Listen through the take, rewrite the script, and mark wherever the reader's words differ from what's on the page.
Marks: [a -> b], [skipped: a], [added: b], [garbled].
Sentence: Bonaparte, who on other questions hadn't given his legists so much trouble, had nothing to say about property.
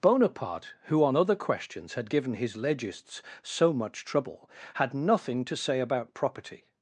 Bonaparte, who on other questions [hadn't -> had] given his legists so much trouble, had nothing to say about property.